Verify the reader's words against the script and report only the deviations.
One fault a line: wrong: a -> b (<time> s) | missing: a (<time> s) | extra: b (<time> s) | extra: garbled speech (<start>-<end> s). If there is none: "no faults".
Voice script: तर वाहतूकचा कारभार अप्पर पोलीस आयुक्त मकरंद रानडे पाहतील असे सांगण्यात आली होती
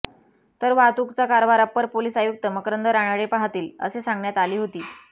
no faults